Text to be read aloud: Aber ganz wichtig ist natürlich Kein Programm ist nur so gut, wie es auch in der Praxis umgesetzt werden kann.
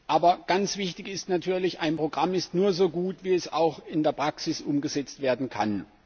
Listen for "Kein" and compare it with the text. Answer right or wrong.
wrong